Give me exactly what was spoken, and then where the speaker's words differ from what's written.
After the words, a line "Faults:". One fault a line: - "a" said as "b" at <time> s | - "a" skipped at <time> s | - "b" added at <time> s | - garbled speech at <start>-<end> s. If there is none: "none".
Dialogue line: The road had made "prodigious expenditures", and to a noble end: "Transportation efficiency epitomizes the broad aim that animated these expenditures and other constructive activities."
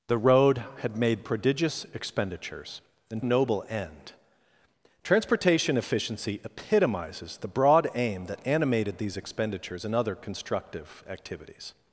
The road had made "prodigious expenditures", and a noble end: "Transportation efficiency epitomizes the broad aim that animated these expenditures and other constructive activities."
Faults:
- "to" skipped at 3.2 s